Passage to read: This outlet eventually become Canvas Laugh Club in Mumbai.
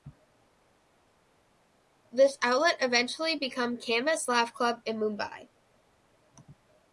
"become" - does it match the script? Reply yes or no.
yes